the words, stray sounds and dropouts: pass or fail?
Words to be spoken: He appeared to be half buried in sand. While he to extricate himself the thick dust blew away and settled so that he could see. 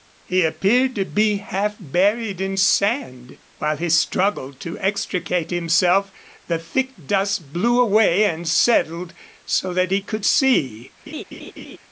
fail